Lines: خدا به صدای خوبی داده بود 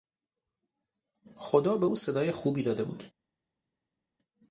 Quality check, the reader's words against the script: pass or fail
fail